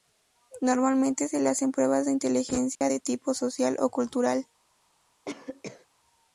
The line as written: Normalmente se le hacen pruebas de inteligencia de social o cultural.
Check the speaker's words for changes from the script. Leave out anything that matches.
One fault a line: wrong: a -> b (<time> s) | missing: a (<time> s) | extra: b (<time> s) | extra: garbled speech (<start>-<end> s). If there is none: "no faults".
extra: tipo (3.0 s)